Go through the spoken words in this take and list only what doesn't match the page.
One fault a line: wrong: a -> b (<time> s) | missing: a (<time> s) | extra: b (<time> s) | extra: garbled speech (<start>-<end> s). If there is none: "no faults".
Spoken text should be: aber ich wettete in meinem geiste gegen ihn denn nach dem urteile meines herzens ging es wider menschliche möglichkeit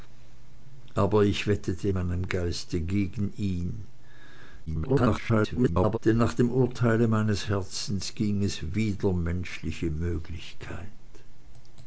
missing: in (1.9 s)
extra: garbled speech (4.7-6.0 s)